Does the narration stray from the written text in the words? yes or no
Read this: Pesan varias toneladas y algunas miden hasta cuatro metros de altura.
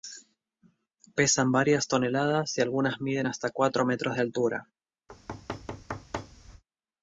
no